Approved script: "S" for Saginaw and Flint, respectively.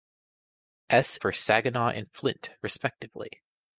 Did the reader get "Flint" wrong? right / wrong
right